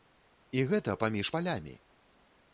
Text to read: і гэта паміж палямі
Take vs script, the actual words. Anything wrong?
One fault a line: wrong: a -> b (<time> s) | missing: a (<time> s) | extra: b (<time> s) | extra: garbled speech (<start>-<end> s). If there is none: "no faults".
no faults